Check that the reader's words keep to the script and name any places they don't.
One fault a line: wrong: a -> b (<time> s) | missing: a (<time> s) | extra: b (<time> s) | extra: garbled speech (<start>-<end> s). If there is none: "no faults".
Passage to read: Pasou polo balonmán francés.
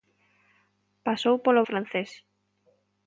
missing: balonmán (1.6 s)